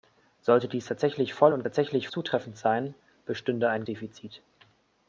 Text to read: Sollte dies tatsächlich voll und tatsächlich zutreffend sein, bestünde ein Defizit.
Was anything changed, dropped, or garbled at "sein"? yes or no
no